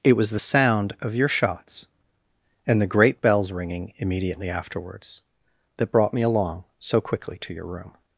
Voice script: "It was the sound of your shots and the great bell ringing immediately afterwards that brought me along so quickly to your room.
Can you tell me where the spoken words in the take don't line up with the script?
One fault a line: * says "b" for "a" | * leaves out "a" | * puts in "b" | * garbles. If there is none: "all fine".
* says "bells" for "bell"